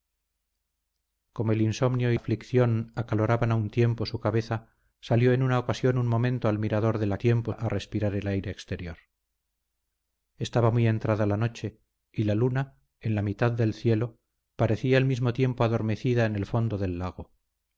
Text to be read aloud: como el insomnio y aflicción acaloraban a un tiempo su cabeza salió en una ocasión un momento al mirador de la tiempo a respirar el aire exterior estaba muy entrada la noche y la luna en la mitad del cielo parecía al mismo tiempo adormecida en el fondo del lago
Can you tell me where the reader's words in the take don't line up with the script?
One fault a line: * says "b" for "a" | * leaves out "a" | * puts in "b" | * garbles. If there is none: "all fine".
all fine